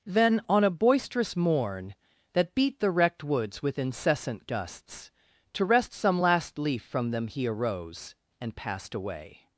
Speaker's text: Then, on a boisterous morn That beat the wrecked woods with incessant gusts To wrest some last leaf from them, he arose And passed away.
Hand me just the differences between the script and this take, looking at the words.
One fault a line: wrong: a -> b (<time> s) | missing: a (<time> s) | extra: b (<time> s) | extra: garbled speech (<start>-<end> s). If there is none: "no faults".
no faults